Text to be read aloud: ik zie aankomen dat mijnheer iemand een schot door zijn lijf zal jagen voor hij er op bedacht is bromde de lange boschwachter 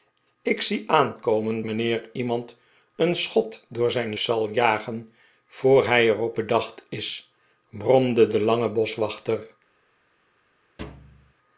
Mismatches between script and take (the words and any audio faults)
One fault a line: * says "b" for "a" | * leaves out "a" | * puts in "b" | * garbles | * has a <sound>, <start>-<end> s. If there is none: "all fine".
* leaves out "dat"
* leaves out "lijf"
* has a thud, 10.8-11.3 s